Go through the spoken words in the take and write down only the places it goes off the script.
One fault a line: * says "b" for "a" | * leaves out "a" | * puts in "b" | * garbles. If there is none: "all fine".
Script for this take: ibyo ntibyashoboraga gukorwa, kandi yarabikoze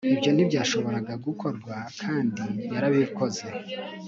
all fine